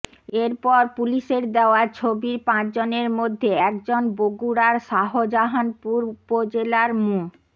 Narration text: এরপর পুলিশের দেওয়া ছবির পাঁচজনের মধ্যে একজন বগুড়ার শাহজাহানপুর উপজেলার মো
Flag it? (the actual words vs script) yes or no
no